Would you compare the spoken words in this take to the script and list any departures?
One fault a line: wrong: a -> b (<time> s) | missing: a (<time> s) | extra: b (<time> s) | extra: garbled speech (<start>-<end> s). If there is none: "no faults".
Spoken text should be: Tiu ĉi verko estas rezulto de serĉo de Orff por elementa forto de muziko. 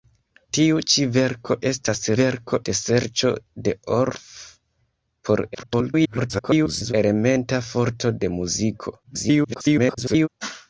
wrong: rezulto -> verko (2.2 s)
extra: garbled speech (5.5-6.9 s)
extra: garbled speech (9.0-10.3 s)